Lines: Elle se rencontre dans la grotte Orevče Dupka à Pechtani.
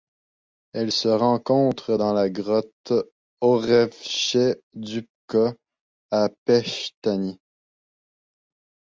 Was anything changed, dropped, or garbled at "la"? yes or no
no